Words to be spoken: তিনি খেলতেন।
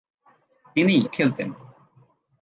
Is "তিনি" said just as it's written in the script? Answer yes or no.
yes